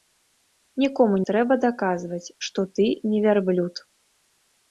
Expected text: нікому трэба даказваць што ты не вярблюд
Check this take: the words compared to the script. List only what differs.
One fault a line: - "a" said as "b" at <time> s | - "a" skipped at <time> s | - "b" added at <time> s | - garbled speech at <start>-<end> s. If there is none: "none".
none